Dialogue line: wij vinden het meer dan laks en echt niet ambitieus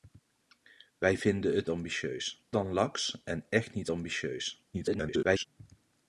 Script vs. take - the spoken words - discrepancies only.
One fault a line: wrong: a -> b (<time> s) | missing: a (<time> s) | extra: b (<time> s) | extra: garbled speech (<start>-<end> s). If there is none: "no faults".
wrong: meer -> ambitieus (1.7 s)
extra: garbled speech (4.7-5.5 s)